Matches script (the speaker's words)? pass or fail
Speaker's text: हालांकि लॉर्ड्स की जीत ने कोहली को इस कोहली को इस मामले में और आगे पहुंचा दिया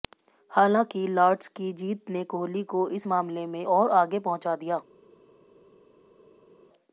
fail